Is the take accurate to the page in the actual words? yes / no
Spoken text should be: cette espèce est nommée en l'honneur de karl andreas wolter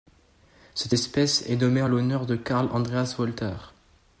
yes